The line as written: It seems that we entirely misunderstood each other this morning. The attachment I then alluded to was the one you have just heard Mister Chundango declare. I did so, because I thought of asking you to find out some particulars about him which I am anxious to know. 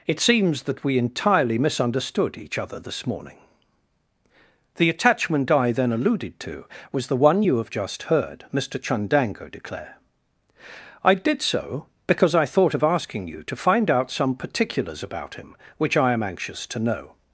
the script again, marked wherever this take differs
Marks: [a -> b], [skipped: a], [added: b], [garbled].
It seems that we entirely misunderstood each other this morning. The attachment I then alluded to was the one you have just heard Mister Chundango declare. I did so, because I thought of asking you to find out some particulars about him which I am anxious to know.